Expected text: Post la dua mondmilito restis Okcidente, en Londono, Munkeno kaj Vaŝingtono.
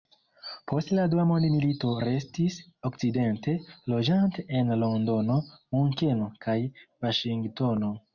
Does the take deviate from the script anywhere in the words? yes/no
yes